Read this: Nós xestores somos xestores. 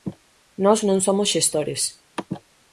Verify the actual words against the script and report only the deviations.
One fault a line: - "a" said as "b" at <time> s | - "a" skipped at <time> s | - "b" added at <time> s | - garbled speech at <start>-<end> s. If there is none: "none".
- "xestores" said as "non" at 0.9 s